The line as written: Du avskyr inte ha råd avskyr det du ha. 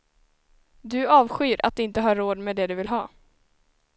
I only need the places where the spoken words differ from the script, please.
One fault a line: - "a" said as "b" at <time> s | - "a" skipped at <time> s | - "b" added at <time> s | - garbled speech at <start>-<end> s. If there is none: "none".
- "att" added at 1.6 s
- "avskyr" said as "med" at 2.4 s
- "vill" added at 2.8 s